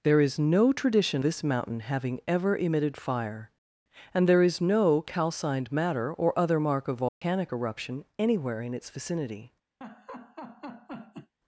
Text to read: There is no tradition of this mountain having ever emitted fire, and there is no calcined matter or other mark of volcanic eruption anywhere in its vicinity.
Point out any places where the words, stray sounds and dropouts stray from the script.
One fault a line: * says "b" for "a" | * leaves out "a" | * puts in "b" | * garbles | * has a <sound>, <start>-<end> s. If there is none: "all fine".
* leaves out "of"
* has a dropout, 7.1-7.2 s
* has a laugh, 9.8-11.3 s